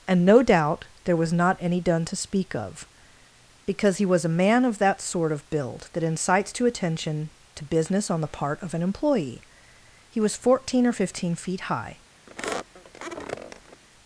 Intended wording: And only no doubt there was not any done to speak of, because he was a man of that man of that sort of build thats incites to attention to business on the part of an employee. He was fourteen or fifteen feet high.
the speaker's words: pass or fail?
fail